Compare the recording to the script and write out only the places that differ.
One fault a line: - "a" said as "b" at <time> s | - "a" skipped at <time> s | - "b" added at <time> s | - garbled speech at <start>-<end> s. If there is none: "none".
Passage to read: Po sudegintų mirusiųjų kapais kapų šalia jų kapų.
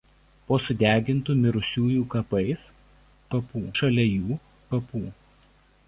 none